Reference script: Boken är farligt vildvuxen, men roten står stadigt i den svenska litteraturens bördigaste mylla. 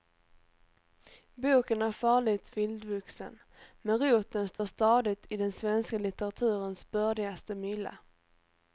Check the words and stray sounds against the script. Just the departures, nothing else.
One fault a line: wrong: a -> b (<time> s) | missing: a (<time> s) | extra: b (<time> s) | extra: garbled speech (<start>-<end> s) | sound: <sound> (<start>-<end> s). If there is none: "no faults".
sound: dropout (4.6-4.6 s)